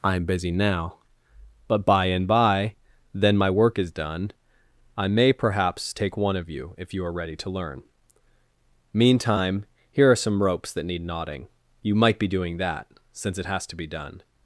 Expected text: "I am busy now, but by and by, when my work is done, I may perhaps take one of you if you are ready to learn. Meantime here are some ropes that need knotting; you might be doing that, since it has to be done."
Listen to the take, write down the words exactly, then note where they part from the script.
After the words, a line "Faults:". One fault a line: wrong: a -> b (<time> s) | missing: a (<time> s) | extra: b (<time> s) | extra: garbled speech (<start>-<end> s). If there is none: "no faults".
"I am busy now, but by and by, then my work is done, I may perhaps take one of you if you are ready to learn. Meantime here are some ropes that need knotting; you might be doing that, since it has to be done."
Faults:
wrong: when -> then (3.1 s)